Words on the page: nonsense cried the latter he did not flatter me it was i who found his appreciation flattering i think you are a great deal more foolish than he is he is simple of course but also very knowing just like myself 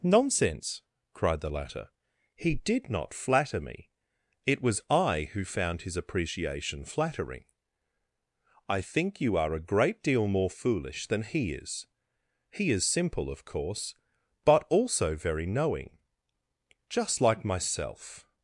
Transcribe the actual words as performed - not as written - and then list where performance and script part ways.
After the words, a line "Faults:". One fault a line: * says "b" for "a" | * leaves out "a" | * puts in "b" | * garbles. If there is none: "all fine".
nonsense cried the latter he did not flatter me it was i who found his appreciation flattering i think you are a great deal more foolish than he is he is simple of course but also very knowing just like myself
Faults:
all fine